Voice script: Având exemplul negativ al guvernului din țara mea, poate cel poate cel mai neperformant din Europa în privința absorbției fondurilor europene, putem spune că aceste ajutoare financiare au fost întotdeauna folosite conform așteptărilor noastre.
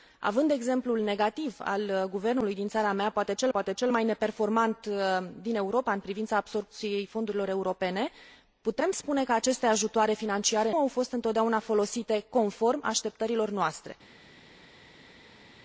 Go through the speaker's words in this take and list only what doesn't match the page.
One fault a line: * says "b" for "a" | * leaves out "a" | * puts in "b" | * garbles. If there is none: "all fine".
all fine